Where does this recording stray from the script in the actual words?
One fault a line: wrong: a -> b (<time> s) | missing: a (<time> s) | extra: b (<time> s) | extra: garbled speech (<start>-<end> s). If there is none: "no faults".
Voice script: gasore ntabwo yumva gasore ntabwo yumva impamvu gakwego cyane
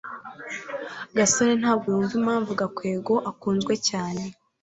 missing: gasore ntabwo yumva (2.1 s)
extra: akunzwe (3.3 s)